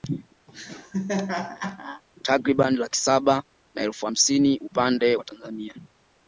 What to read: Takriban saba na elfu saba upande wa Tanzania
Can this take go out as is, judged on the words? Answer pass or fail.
fail